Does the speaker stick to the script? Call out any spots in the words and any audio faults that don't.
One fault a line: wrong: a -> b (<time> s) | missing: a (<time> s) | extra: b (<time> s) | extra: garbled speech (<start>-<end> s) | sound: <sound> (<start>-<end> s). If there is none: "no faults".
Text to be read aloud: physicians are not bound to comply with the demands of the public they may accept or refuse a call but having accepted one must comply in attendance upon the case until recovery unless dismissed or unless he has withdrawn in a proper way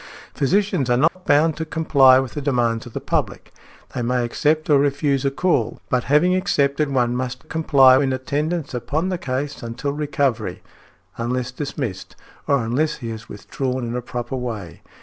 sound: dropout (1.1-1.2 s)